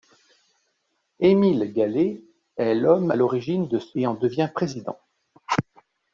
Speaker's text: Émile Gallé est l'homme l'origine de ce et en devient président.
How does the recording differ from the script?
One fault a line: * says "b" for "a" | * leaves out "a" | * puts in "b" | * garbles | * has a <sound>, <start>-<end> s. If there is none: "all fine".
all fine